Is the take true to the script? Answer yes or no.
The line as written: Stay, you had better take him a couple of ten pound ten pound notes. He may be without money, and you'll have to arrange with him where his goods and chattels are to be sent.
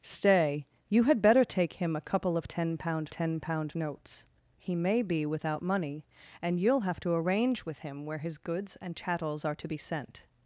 yes